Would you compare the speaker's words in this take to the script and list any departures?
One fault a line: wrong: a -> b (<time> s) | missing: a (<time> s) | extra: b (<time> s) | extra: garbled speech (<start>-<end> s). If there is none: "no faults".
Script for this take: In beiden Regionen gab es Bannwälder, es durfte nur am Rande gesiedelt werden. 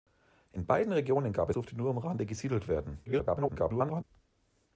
missing: es Bannwälder es (1.5 s)
extra: garbled speech (3.1-4.0 s)